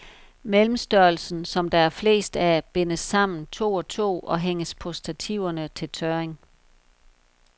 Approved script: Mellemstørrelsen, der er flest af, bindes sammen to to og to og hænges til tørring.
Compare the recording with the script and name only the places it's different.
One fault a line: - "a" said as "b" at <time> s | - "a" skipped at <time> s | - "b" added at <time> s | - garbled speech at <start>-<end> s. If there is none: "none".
- "som" added at 1.4 s
- "to" skipped at 3.7 s
- "på stativerne" added at 4.8 s